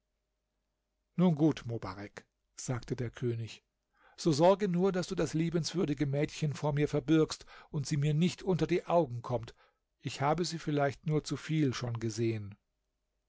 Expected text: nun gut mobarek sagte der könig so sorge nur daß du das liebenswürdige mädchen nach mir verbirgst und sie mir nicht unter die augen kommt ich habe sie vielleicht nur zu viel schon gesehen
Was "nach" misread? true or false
true